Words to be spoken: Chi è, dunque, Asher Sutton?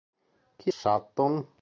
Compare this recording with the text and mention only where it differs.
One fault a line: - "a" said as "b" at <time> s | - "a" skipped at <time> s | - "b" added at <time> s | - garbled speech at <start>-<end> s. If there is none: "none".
- "è dunque Asher" skipped at 0.7 s